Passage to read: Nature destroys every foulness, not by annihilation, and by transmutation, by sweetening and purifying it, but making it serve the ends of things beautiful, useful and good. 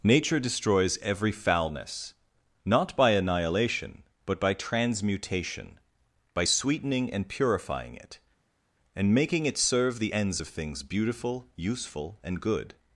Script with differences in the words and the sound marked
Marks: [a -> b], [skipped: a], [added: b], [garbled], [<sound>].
Nature destroys every foulness, not by annihilation, [and -> but] by transmutation, by sweetening and purifying it, [but -> and] making it serve the ends of things beautiful, useful and good.